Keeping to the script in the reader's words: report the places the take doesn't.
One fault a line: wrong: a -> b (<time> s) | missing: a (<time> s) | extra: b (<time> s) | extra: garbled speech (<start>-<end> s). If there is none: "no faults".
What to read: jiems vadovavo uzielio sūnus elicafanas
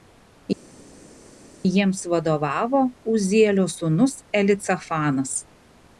no faults